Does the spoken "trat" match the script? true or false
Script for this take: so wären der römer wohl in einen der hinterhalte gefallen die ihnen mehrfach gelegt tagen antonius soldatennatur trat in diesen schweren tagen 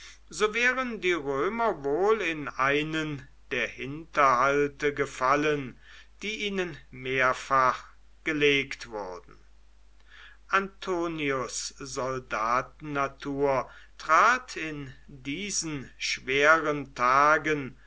true